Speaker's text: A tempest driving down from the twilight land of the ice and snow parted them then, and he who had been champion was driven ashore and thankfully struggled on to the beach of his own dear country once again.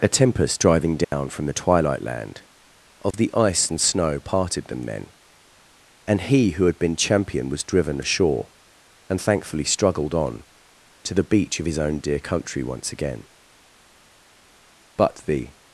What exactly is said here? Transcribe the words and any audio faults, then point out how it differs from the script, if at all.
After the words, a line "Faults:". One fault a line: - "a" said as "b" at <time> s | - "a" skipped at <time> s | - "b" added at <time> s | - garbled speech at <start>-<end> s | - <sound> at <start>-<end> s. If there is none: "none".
A tempest driving down from the twilight land of the ice and snow parted them then, and he who had been champion was driven ashore and thankfully struggled on to the beach of his own dear country once again. But the
Faults:
- dropout at 1.0-1.1 s
- dropout at 3.1-3.1 s
- "But the" added at 15.0 s